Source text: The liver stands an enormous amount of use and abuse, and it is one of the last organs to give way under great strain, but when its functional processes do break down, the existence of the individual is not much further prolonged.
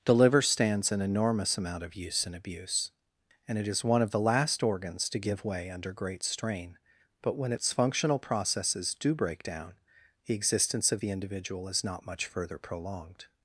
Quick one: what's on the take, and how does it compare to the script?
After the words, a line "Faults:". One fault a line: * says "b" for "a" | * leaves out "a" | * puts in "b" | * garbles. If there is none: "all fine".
The liver stands an enormous amount of use and abuse, and it is one of the last organs to give way under great strain, but when its functional processes do break down, the existence of the individual is not much further prolonged.
Faults:
all fine